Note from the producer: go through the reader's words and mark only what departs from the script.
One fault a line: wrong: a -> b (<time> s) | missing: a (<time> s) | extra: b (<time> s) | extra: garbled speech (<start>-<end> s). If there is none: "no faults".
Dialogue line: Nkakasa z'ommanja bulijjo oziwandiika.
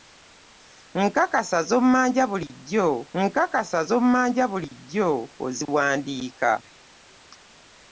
extra: nkakasa z'ommanja bulijjo (3.2 s)